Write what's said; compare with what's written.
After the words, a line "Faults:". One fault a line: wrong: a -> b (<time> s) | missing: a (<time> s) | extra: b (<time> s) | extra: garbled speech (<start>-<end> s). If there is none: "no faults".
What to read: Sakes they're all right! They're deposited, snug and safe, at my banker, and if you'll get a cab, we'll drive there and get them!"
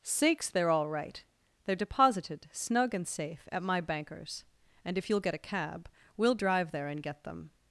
Sakes they're all right! They're deposited, snug and safe, at my bankers, and if you'll get a cab, we'll drive there and get them!"
Faults:
wrong: banker -> bankers (3.8 s)